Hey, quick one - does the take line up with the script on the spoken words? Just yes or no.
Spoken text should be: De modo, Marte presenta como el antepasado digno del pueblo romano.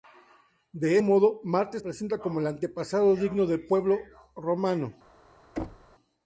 yes